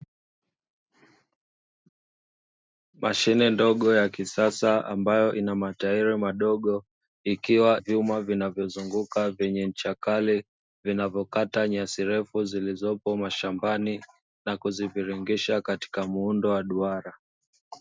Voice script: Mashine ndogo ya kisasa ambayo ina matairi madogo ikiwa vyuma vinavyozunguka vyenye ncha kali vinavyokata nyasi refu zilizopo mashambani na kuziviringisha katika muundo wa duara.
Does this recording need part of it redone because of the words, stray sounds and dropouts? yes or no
no